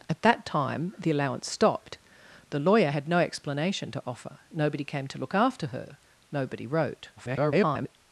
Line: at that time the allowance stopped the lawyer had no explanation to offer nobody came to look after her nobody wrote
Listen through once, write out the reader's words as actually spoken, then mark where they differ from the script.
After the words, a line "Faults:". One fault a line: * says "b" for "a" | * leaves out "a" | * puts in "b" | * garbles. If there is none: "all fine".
at that time the allowance stopped the lawyer had no explanation to offer nobody came to look after her nobody wrote [garbled]
Faults:
* garbles